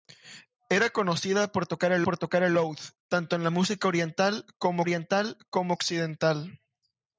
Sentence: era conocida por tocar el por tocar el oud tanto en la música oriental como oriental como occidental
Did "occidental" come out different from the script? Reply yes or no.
no